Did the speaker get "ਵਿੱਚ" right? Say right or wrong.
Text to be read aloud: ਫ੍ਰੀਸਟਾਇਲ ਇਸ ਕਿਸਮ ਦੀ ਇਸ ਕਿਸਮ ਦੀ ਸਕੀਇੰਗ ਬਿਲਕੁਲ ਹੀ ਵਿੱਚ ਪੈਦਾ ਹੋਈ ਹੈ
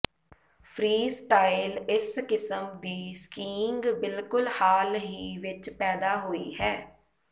right